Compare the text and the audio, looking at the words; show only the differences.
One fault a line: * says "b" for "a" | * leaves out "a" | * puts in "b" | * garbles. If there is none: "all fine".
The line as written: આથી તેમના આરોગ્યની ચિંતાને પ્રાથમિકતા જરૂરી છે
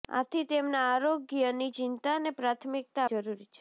all fine